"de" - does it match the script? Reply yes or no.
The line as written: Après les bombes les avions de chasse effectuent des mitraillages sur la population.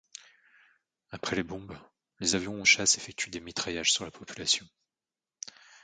no